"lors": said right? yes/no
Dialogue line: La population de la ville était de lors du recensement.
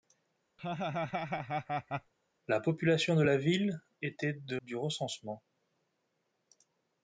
no